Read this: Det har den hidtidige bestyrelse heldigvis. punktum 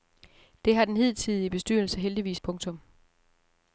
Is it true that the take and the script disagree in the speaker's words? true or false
false